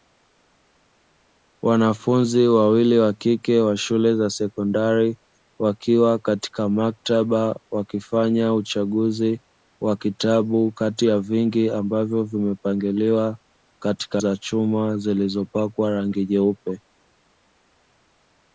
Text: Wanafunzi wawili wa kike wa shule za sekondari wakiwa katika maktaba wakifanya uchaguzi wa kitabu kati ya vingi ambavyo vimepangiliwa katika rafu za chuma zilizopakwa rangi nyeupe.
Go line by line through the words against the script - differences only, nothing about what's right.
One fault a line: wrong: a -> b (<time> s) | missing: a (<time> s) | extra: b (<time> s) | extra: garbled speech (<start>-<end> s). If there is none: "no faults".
missing: rafu (14.2 s)